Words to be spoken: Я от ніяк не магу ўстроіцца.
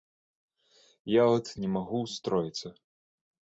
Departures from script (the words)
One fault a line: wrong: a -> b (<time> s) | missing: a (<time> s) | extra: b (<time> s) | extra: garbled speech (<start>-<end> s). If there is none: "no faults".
missing: ніяк (1.5 s)